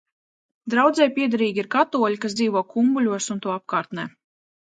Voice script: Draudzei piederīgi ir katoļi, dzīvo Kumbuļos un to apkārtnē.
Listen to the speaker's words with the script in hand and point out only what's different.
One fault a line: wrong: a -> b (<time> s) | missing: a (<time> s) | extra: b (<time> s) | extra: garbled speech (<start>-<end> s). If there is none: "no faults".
extra: kas (2.2 s)